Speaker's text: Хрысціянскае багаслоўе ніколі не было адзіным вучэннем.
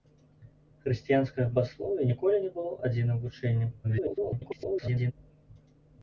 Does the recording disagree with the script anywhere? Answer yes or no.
yes